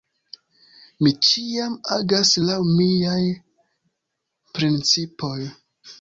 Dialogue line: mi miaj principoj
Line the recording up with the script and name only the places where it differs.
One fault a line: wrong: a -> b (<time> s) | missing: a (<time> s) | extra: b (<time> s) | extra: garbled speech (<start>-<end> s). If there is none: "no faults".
extra: ĉiam agas laŭ (1.2 s)